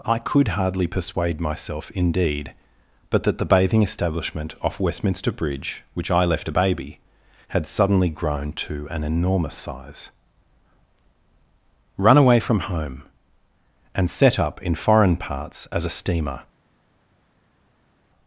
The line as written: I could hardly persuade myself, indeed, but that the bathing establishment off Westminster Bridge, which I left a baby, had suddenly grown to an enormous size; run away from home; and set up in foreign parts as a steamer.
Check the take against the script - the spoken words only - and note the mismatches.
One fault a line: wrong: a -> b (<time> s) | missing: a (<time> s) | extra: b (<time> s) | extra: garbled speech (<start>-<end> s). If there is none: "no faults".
no faults